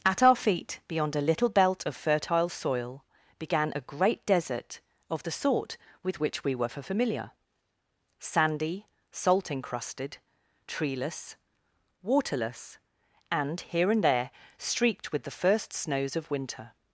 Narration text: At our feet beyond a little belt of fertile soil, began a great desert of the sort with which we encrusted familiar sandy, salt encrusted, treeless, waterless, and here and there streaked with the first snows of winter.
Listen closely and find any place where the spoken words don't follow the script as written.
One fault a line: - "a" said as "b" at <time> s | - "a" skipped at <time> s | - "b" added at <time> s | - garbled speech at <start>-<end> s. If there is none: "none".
- "encrusted" said as "were" at 6.5 s